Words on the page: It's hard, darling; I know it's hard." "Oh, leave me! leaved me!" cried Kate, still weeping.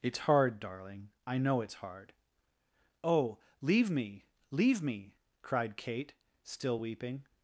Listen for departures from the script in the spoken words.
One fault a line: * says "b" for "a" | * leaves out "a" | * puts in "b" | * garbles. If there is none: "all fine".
* says "leave" for "leaved"